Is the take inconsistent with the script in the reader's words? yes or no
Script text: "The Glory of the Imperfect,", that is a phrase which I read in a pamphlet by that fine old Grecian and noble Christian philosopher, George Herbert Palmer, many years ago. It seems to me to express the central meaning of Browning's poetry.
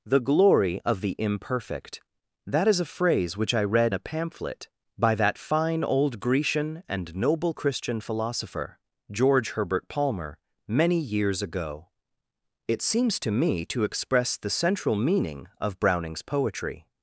yes